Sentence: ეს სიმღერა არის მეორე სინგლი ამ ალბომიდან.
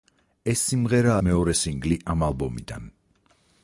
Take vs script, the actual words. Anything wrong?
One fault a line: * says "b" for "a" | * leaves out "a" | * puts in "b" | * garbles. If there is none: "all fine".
* leaves out "არის"